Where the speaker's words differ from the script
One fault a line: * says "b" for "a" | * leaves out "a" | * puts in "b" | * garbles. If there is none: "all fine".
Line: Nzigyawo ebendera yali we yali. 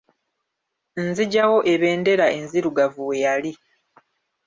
* says "enzirugavu" for "yali"